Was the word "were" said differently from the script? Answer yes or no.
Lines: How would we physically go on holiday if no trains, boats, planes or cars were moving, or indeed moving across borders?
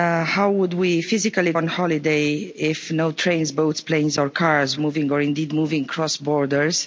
yes